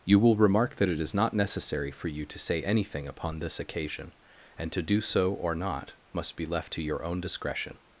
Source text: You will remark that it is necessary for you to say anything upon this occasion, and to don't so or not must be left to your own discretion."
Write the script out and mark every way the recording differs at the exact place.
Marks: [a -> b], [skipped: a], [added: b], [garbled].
You will remark that it is [added: not] necessary for you to say anything upon this occasion, and to [don't -> do] so or not must be left to your own discretion."